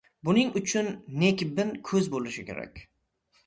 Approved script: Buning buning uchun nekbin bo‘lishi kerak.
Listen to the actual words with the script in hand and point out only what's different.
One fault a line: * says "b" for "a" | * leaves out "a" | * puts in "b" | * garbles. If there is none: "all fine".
* leaves out "buning"
* puts in "ko‘z"